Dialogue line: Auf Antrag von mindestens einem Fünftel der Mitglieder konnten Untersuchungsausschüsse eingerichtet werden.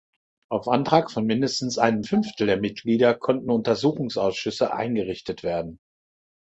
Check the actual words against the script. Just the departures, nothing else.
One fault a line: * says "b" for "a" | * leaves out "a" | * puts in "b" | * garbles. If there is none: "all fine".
all fine